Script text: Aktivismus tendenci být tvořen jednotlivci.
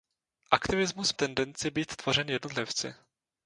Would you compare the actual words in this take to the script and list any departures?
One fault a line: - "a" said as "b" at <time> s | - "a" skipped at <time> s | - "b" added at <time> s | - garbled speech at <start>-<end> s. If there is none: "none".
none